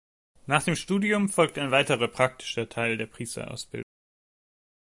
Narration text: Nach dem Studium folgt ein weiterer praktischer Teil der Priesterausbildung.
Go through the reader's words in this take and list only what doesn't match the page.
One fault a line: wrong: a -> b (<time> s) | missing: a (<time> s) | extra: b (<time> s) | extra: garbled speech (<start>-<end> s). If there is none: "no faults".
no faults